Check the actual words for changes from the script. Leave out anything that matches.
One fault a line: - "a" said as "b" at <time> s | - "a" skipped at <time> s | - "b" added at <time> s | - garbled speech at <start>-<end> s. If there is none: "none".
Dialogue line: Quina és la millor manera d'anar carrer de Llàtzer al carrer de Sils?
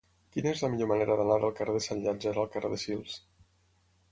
- "del" added at 1.4 s
- "Sant" added at 1.9 s